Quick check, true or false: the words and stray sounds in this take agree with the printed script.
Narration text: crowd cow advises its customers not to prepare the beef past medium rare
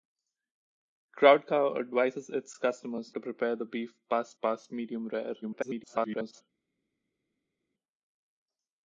false